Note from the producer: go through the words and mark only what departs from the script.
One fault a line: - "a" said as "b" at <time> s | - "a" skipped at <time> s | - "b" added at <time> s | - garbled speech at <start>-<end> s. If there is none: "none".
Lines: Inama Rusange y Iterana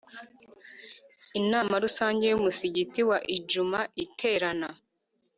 - "Umusigiti wa Idjuma" added at 2.4 s